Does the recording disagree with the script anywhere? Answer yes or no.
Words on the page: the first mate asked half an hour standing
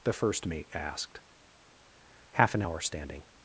no